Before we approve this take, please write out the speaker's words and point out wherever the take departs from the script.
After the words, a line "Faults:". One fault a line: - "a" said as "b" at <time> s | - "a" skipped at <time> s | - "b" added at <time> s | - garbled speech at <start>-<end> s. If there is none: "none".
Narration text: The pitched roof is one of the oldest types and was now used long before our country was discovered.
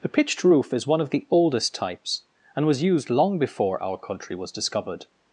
The pitched roof is one of the oldest types and was used long before our country was discovered.
Faults:
- "now" skipped at 2.8 s